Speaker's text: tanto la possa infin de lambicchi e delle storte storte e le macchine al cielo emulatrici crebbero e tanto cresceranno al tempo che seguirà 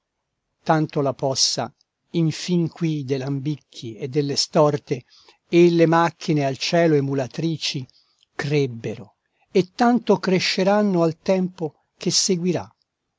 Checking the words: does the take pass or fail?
fail